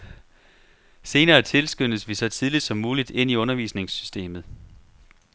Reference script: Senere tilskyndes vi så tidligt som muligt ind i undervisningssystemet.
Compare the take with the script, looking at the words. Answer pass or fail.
pass